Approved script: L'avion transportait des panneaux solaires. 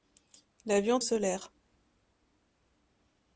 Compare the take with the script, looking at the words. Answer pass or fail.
fail